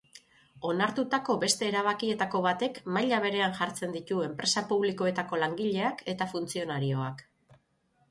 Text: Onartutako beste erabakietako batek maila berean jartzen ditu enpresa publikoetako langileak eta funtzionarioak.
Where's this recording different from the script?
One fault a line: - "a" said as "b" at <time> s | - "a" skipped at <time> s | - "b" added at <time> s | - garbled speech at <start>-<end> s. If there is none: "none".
none